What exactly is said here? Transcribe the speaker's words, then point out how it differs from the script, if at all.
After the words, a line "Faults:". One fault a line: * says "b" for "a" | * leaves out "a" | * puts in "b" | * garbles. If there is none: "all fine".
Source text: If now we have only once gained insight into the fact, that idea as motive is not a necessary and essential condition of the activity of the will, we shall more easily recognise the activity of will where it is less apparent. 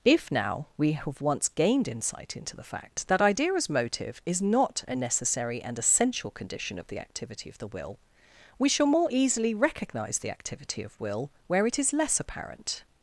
If now we have once gained insight into the fact, that idea as motive is not a necessary and essential condition of the activity of the will, we shall more easily recognise the activity of will where it is less apparent.
Faults:
* leaves out "only"